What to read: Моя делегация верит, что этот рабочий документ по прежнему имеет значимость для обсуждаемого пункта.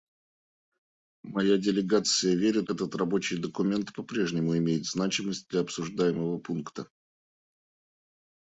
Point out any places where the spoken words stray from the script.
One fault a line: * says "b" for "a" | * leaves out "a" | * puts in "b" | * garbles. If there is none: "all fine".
* leaves out "что"